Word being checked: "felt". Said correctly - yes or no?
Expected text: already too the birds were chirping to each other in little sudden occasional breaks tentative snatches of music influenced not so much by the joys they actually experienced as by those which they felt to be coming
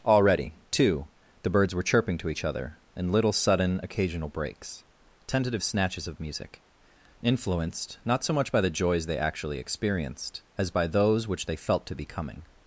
yes